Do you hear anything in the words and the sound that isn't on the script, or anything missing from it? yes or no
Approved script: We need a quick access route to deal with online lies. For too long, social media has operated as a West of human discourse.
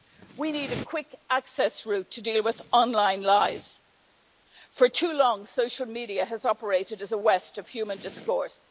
no